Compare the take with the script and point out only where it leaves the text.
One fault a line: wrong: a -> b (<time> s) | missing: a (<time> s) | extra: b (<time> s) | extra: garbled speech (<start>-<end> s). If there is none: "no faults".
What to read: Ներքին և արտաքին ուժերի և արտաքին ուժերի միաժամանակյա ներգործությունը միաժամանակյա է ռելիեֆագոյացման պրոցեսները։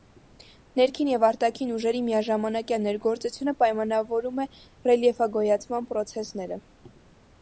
missing: և արտաքին ուժերի (2.0 s)
wrong: միաժամանակյա -> պայմանավորում (3.6 s)